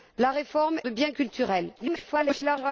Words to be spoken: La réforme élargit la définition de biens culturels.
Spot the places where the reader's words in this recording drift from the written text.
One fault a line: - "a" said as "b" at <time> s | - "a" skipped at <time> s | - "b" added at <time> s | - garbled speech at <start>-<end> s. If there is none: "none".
- "élargit la définition" skipped at 0.8 s
- garbled speech at 1.8-2.7 s